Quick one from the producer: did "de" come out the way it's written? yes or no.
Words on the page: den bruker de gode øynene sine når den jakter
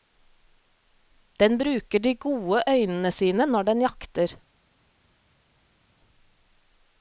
yes